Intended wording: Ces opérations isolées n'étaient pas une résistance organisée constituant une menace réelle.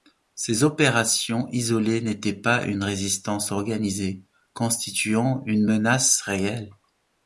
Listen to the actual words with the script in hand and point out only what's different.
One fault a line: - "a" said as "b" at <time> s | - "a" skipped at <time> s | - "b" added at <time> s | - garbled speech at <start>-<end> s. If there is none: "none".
none